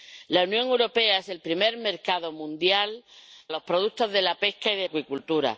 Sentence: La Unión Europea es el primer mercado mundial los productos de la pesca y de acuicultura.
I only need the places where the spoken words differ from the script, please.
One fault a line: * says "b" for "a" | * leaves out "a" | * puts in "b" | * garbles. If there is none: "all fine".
all fine